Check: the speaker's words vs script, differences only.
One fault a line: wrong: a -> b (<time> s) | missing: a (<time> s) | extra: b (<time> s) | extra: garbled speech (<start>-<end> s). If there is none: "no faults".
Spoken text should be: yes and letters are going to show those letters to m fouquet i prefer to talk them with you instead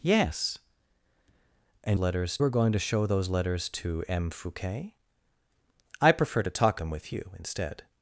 no faults